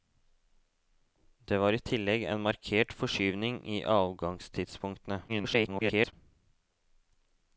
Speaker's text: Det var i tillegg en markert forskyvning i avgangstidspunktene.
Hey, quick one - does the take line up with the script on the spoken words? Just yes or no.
no